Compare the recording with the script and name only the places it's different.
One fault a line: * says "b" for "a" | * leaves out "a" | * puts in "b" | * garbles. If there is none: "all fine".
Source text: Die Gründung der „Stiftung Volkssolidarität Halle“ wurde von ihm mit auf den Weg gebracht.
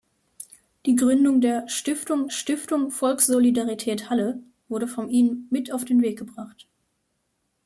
* puts in "stiftung"